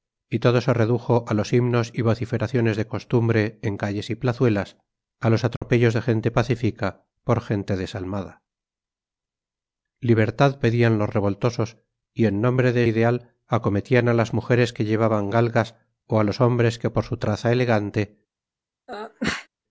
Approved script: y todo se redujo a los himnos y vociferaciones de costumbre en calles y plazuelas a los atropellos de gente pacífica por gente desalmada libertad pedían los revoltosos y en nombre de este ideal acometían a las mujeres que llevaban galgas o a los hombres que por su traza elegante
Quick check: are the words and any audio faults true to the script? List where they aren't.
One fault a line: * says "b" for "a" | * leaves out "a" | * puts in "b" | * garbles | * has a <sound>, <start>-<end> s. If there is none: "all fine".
* has a dropout, 5.6-5.6 s
* leaves out "este"
* has a sneeze, 18.9-19.5 s